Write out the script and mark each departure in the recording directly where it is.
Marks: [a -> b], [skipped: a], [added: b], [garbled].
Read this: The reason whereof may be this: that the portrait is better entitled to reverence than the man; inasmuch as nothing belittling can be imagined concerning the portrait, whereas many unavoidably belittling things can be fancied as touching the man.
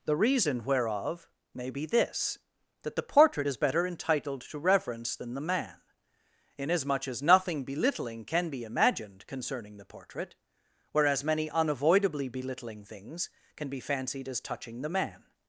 The reason whereof may be this: that the portrait is better entitled to reverence than the man; inasmuch as nothing belittling can be imagined concerning the portrait, whereas many unavoidably belittling things can be fancied as touching the man.